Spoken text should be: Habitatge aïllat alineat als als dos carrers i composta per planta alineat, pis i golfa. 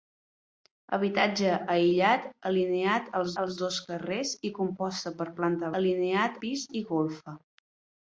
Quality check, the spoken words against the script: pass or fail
pass